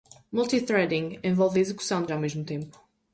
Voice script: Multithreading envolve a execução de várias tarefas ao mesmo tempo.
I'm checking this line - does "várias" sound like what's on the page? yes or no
no